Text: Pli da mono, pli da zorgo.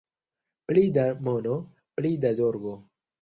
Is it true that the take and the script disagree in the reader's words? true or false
false